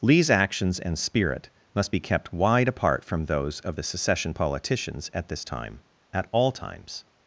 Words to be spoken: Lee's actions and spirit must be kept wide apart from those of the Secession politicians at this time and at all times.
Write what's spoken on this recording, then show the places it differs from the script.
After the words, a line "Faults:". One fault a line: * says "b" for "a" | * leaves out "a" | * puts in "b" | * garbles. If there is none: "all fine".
Lee's actions and spirit must be kept wide apart from those of the Secession politicians at this time at all times.
Faults:
* leaves out "and"